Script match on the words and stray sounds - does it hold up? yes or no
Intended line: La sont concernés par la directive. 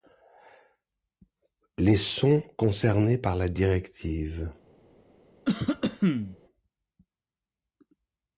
no